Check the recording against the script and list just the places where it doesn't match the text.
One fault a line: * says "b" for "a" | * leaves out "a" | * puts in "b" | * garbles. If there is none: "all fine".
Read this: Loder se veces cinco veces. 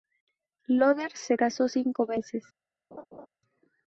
* says "casó" for "veces"